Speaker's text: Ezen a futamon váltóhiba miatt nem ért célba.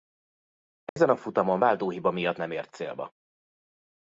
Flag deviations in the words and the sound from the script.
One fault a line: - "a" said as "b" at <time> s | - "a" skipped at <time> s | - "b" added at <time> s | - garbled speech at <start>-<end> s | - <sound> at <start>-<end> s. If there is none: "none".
- dropout at 0.9-1.0 s